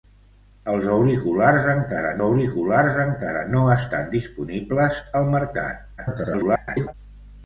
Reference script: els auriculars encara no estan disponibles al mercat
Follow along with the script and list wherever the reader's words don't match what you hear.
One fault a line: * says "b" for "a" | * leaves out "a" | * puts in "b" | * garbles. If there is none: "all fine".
* puts in "auriculars encara"
* garbles